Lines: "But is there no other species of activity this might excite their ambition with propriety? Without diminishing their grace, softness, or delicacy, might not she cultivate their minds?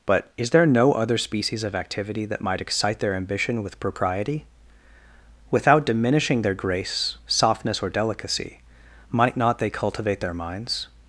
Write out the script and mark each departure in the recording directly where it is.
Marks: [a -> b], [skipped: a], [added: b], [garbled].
"But is there no other species of activity [this -> that] might excite their ambition with propriety? Without diminishing their grace, softness, or delicacy, might not [she -> they] cultivate their minds?